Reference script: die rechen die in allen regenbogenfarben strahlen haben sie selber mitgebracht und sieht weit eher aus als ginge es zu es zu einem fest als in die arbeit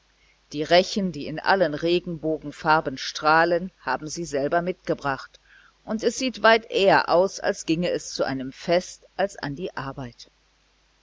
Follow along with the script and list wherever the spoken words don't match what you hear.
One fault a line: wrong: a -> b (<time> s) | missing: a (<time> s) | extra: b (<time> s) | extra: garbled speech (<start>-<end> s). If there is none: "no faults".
extra: es (6.0 s)
missing: es zu (8.2 s)
wrong: in -> an (9.4 s)